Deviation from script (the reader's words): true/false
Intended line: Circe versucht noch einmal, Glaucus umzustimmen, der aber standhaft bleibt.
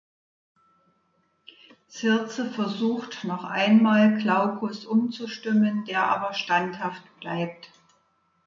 false